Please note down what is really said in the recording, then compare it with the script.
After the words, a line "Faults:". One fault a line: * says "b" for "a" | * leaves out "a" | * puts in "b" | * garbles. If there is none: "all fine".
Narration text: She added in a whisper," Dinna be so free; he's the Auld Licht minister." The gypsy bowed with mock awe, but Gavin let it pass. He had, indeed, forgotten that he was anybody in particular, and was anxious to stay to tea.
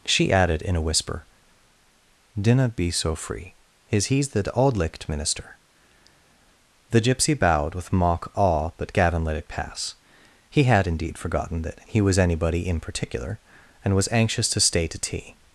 She added in a whisper," Dinna be so free; is he's the Auld Licht minister." The gypsy bowed with mock awe, but Gavin let it pass. He had, indeed, forgotten that he was anybody in particular, and was anxious to stay to tea.
Faults:
* puts in "is"